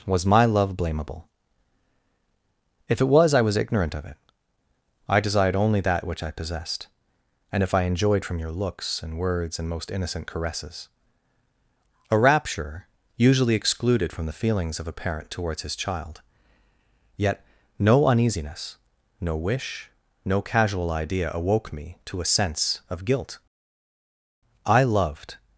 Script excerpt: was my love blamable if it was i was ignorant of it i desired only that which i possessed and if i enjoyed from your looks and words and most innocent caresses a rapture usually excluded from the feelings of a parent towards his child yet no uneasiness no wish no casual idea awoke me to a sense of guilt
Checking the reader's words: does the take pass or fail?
fail